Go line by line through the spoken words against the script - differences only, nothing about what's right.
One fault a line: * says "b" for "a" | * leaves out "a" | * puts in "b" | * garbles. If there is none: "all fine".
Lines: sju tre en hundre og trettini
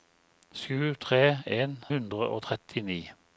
all fine